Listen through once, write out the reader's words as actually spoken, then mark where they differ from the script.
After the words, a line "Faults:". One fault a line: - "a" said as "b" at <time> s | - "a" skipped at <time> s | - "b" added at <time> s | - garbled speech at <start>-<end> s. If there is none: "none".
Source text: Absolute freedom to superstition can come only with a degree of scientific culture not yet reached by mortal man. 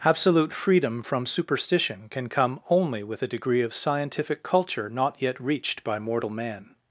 Absolute freedom from superstition can come only with a degree of scientific culture not yet reached by mortal man.
Faults:
- "to" said as "from" at 1.0 s